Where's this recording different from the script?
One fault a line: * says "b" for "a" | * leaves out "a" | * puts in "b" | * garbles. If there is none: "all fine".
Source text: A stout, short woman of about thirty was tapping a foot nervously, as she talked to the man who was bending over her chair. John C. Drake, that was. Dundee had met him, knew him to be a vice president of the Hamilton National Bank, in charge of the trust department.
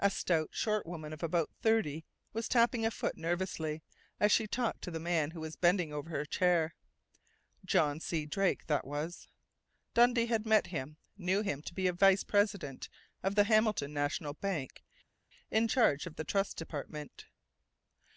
all fine